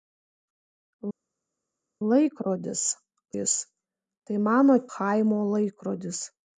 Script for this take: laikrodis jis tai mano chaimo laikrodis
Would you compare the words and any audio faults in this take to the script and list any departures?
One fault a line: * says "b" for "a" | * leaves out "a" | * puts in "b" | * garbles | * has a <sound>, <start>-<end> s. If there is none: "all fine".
all fine